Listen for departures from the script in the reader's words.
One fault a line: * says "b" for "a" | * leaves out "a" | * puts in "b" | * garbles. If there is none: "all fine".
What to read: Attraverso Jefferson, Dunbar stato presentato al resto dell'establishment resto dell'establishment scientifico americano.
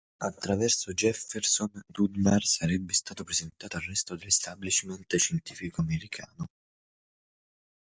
* puts in "sarebbe"
* leaves out "resto dell'establishment"